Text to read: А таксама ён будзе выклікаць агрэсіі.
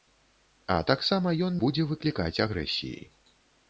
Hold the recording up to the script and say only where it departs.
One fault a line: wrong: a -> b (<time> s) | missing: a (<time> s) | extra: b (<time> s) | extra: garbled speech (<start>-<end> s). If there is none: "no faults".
no faults